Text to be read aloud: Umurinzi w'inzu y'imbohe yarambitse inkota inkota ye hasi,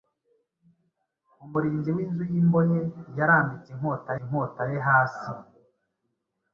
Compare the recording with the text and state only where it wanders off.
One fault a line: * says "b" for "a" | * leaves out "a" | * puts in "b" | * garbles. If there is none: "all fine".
all fine